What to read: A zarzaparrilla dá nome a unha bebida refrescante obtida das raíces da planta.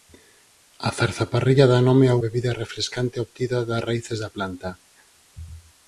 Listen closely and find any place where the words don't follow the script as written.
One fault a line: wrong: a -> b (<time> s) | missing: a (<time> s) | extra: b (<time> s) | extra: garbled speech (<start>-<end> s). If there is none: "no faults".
missing: unha (2.2 s)